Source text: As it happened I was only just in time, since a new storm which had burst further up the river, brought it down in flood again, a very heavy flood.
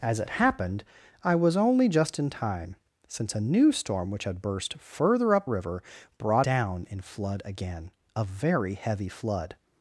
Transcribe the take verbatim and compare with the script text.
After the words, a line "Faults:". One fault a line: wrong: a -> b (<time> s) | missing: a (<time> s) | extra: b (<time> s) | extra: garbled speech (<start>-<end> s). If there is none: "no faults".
As it happened I was only just in time, since a new storm which had burst further up river, brought down in flood again, a very heavy flood.
Faults:
missing: the (5.5 s)
missing: it (6.5 s)